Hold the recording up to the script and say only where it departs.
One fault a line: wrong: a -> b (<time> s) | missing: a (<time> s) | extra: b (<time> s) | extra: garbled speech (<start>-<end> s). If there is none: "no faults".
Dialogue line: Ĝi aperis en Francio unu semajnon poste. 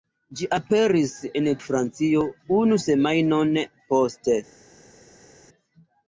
no faults